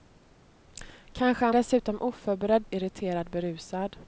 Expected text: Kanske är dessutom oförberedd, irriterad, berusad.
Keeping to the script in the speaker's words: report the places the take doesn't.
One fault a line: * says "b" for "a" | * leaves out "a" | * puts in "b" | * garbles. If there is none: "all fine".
all fine